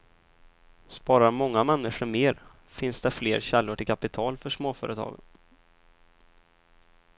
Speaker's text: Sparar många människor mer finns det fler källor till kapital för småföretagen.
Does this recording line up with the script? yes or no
yes